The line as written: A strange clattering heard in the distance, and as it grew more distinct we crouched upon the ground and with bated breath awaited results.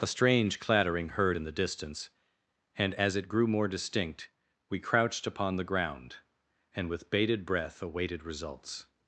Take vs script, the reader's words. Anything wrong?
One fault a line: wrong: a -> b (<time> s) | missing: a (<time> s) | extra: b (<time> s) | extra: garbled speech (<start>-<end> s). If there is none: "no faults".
no faults